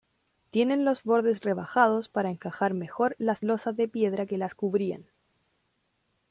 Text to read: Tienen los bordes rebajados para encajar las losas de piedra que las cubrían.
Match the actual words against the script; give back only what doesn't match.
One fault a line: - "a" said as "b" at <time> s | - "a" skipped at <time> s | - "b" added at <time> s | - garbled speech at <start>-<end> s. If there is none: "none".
- "mejor" added at 2.7 s